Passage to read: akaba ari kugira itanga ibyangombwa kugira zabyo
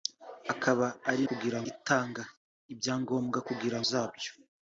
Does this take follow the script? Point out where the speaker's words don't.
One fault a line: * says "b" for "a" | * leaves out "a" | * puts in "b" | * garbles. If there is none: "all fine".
all fine